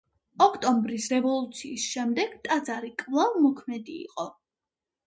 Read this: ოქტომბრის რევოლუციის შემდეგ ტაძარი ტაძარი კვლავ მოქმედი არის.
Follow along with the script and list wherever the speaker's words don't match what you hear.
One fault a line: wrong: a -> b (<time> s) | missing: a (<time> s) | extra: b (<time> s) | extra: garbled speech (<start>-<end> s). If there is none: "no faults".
missing: ტაძარი (2.9 s)
wrong: არის -> იყო (4.1 s)